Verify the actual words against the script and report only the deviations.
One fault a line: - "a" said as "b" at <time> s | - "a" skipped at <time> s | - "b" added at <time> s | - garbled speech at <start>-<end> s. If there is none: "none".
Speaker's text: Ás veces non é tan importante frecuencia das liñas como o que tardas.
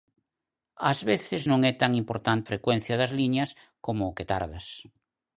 none